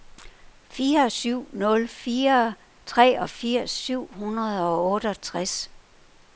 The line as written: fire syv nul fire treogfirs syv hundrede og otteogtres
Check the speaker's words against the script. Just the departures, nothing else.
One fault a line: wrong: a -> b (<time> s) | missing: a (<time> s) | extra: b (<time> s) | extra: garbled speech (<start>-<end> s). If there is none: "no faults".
no faults